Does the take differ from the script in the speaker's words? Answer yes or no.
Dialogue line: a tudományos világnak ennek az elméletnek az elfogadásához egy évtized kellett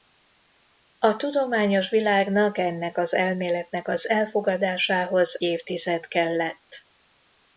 yes